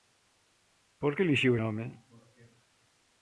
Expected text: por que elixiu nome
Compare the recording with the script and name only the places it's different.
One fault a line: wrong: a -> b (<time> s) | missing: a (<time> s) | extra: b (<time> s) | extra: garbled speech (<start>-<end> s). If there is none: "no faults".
no faults